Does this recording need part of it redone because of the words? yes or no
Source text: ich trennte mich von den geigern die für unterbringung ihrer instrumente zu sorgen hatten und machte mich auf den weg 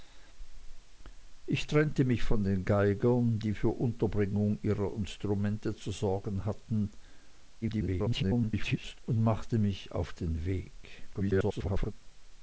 yes